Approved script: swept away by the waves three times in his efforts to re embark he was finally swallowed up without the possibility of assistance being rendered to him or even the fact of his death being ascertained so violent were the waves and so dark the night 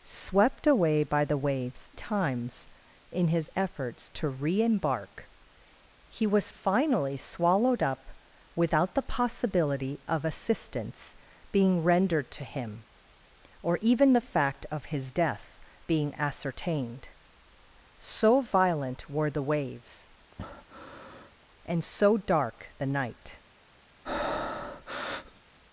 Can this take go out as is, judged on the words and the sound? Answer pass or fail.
fail